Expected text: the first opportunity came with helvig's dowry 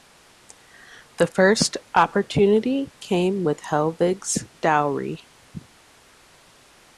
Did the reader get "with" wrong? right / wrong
right